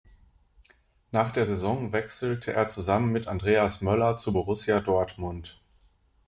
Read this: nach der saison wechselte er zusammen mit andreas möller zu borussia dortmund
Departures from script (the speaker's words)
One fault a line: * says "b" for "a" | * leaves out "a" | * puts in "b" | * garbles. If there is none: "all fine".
all fine